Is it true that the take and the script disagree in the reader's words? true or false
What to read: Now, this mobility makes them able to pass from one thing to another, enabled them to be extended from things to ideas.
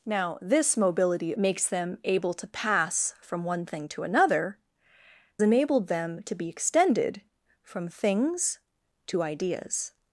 false